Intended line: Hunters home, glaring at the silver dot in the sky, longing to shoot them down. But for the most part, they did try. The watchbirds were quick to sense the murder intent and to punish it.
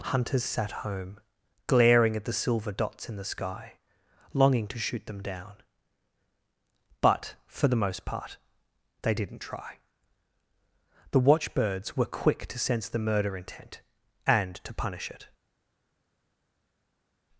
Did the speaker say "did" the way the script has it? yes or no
no